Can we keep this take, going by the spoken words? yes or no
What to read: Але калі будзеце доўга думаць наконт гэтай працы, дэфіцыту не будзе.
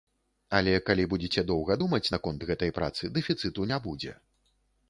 yes